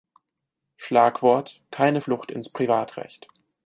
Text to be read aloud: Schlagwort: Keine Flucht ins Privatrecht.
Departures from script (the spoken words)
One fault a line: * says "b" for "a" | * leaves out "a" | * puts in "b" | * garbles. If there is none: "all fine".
all fine